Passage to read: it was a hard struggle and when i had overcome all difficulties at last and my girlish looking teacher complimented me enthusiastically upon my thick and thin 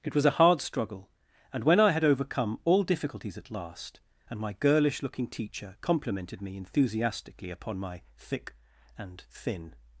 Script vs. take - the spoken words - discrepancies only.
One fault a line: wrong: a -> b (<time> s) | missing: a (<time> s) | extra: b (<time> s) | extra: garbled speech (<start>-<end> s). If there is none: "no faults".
no faults